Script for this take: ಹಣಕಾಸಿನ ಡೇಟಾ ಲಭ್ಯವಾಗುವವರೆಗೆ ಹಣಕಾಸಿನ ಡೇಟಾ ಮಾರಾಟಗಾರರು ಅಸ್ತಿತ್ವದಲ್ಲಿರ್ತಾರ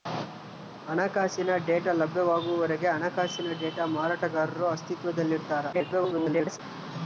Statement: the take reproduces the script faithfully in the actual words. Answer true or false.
false